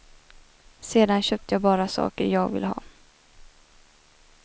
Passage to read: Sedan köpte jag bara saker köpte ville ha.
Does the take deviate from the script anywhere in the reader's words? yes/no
yes